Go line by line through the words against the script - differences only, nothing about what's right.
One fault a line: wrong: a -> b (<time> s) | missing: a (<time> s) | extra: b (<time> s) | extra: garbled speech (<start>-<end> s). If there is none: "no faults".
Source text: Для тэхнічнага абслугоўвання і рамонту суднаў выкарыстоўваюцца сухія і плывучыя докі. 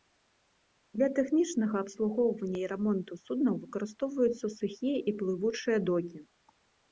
no faults